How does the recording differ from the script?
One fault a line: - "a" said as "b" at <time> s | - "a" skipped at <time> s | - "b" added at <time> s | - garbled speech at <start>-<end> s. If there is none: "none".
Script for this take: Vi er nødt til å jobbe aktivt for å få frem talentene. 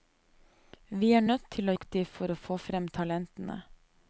- "jobbe" skipped at 1.8 s